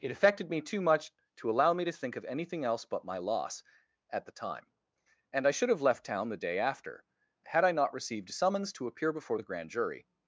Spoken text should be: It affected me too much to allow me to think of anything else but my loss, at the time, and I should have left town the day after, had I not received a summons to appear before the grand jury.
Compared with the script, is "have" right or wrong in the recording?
right